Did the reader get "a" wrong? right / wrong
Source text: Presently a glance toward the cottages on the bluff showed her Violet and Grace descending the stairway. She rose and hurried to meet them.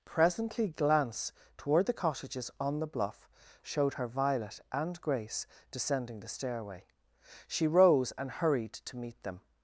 wrong